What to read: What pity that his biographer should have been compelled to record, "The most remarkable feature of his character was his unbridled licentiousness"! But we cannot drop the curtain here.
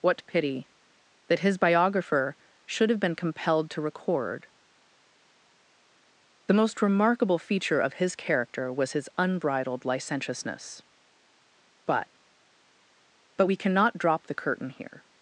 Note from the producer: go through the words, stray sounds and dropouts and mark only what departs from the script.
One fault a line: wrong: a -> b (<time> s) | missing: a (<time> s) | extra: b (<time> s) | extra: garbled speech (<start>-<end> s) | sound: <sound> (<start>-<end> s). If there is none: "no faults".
extra: But (13.4 s)